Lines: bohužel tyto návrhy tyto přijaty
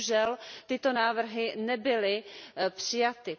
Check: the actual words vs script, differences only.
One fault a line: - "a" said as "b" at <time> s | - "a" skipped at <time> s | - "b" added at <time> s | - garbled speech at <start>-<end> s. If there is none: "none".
- "tyto" said as "nebyly" at 1.6 s